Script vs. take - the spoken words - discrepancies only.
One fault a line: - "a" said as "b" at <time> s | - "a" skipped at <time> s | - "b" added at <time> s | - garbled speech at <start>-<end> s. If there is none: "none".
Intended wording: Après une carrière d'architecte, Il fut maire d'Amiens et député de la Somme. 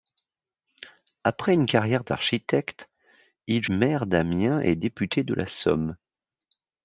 - "fut" skipped at 3.7 s